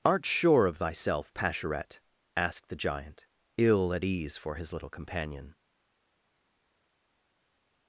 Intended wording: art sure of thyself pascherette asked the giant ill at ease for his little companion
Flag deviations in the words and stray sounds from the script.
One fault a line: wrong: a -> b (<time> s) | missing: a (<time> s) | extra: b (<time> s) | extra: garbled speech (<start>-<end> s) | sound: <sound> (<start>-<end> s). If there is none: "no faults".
no faults